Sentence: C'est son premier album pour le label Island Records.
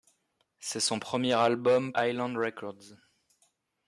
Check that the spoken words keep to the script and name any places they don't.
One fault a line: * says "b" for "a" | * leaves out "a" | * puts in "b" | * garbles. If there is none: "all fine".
* leaves out "pour le label"